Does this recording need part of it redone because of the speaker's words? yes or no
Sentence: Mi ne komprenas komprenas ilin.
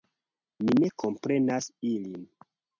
yes